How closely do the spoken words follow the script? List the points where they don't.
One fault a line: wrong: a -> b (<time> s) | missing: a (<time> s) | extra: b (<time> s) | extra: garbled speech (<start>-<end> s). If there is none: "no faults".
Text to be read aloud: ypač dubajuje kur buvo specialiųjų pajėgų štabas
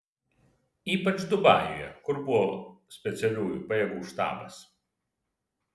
no faults